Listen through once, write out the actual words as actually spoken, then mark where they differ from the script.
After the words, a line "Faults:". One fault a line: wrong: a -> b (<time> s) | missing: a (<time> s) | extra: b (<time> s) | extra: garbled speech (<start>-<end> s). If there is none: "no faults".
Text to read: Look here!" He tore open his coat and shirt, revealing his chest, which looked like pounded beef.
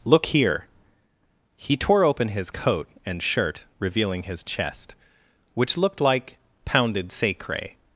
Look here!" He tore open his coat and shirt, revealing his chest, which looked like pounded sacre.
Faults:
wrong: beef -> sacre (7.1 s)